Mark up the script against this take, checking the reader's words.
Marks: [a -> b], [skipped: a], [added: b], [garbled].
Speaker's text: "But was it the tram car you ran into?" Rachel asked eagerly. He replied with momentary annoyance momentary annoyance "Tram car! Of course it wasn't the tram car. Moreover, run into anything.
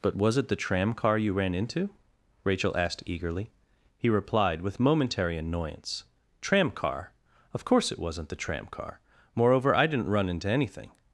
"But was it the tram car you ran into?" Rachel asked eagerly. He replied with momentary annoyance [skipped: momentary annoyance] "Tram car! Of course it wasn't the tram car. Moreover, [added: I didn't] run into anything.